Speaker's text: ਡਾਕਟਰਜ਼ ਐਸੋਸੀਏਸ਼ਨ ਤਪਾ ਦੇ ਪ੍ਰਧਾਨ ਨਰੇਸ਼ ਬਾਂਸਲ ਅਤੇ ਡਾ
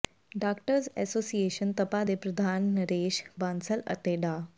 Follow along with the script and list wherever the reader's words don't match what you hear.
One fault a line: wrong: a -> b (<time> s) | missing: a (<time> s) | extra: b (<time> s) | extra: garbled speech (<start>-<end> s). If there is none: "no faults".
no faults